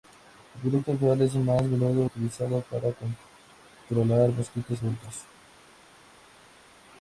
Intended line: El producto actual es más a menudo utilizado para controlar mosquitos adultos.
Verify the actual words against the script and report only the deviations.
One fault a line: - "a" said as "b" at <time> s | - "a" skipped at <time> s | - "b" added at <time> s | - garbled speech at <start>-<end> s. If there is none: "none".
none